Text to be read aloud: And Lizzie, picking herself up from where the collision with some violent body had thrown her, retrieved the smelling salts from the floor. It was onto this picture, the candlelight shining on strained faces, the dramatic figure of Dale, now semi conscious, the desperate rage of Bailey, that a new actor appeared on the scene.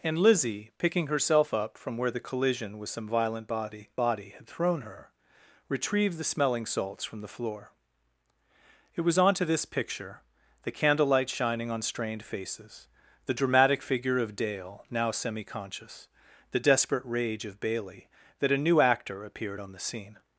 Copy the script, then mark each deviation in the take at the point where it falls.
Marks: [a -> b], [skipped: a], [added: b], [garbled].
And Lizzie, picking herself up from where the collision with some violent body [added: body] had thrown her, retrieved the smelling salts from the floor. It was onto this picture, the candlelight shining on strained faces, the dramatic figure of Dale, now semi conscious, the desperate rage of Bailey, that a new actor appeared on the scene.